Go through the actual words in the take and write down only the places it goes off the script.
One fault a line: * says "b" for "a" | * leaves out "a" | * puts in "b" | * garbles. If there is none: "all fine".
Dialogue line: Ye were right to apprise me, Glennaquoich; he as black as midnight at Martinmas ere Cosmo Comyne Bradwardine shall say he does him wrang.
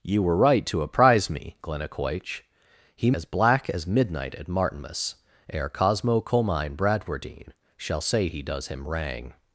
all fine